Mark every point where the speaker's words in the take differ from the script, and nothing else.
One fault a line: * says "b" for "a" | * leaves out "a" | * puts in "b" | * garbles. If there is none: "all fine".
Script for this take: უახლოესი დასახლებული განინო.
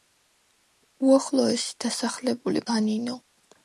all fine